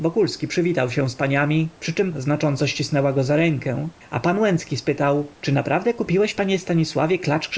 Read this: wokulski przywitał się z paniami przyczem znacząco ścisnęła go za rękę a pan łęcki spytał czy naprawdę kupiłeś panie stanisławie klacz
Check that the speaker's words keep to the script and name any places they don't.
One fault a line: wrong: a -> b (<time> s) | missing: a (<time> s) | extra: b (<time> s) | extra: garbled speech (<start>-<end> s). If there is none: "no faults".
no faults